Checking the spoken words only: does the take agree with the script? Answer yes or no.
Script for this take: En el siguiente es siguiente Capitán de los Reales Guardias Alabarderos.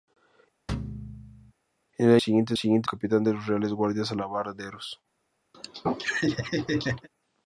yes